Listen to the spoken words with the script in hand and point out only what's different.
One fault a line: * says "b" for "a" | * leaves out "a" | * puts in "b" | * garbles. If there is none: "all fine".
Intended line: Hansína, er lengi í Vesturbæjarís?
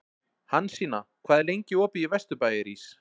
* puts in "hvað"
* puts in "opið"